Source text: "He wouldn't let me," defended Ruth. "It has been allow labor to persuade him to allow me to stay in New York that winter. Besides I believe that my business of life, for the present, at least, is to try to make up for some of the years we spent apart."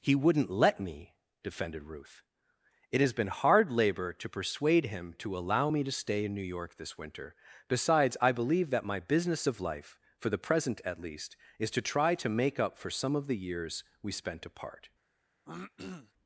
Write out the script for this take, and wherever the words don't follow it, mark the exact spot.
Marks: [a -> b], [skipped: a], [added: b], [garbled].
"He wouldn't let me," defended Ruth. "It has been [allow -> hard] labor to persuade him to allow me to stay in New York [that -> this] winter. Besides I believe that my business of life, for the present, at least, is to try to make up for some of the years we spent apart."